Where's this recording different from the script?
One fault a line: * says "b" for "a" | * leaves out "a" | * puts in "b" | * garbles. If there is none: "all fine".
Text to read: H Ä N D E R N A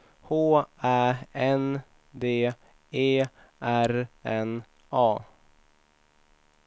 all fine